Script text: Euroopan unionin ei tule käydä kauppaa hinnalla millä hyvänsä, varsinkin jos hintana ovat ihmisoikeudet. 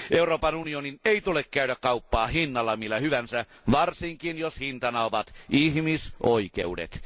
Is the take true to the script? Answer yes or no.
yes